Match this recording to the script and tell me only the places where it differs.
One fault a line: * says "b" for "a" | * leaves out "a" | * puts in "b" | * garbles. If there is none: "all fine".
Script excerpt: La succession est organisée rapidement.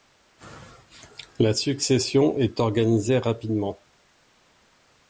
all fine